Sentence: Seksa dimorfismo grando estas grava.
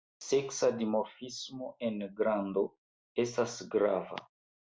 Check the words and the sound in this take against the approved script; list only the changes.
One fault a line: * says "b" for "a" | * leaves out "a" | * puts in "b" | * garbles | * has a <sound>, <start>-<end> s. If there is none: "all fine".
* puts in "en"